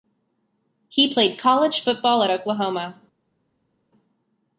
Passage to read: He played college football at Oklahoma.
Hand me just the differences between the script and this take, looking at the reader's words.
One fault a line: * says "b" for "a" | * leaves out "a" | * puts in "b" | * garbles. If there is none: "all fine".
all fine